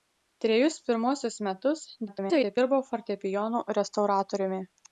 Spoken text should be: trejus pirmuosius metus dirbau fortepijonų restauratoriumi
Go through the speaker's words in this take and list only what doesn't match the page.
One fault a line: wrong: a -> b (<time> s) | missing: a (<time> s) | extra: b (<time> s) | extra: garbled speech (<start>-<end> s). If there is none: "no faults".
extra: garbled speech (2.1-2.6 s)